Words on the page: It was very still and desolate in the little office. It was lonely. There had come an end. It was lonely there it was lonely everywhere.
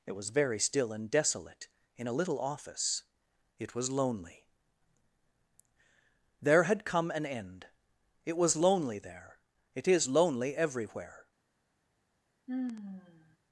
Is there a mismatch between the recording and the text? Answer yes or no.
yes